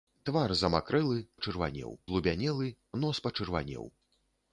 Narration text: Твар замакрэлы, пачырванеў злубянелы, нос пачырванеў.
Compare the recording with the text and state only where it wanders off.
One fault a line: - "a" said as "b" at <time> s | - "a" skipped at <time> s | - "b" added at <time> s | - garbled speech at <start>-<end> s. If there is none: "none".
none